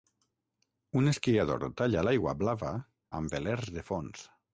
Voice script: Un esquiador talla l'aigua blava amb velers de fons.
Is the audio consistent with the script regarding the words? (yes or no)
yes